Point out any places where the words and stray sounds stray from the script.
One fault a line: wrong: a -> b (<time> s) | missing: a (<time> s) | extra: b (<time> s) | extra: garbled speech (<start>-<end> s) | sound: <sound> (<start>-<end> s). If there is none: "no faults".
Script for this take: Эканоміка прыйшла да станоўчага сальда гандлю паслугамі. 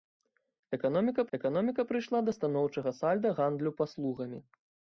extra: эканоміка (1.4 s)